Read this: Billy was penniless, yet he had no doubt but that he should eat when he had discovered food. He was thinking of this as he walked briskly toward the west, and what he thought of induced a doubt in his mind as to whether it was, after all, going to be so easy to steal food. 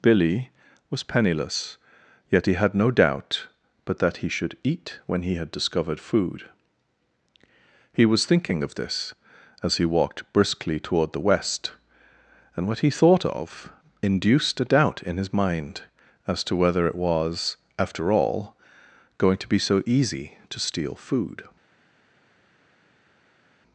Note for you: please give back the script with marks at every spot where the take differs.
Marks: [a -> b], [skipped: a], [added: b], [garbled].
Billy was penniless, yet he had no doubt but that he should eat when he had discovered food. He was thinking of this as he walked briskly toward the west, and what he thought of induced a doubt in his mind as to whether it was, after all, going to be so easy to steal food.